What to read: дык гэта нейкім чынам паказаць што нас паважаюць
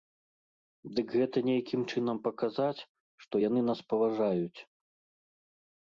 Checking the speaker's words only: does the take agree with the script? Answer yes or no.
no